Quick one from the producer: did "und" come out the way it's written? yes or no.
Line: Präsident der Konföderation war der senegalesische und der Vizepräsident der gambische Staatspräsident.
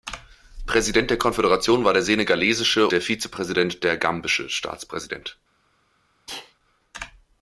no